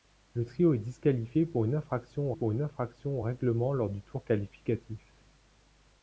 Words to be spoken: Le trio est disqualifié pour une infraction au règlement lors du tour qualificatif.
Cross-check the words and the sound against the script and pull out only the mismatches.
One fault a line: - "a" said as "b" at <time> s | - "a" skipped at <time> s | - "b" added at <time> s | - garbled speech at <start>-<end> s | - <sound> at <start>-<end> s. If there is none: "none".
- "pour une infraction" added at 2.3 s